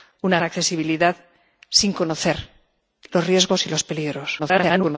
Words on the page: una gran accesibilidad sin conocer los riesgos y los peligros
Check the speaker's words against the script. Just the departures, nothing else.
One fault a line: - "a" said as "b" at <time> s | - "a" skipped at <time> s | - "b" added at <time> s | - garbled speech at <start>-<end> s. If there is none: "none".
- "gran" skipped at 0.4 s
- garbled speech at 4.4-5.0 s